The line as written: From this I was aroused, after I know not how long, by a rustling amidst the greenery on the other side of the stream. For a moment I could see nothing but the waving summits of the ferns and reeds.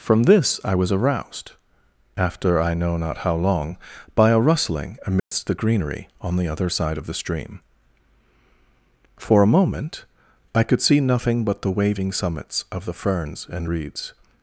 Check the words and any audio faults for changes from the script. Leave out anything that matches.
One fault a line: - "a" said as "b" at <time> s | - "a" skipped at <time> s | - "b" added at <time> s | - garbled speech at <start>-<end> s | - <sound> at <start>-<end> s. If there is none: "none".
- dropout at 5.2-5.3 s